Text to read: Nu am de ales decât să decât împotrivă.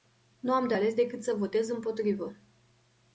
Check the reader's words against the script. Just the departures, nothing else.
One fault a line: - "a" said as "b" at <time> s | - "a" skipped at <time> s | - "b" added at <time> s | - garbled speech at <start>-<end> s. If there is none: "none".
- "decât" said as "votez" at 1.3 s